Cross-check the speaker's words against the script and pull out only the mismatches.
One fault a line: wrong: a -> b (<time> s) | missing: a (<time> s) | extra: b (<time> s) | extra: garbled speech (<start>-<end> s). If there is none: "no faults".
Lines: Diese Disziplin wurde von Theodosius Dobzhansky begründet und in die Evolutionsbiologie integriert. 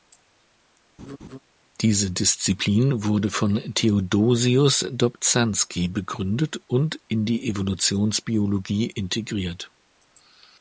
no faults